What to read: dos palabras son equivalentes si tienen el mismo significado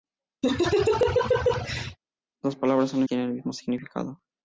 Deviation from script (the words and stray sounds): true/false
true